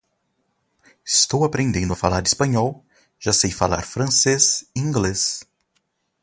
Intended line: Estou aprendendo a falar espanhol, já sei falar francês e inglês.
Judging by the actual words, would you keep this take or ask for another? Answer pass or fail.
pass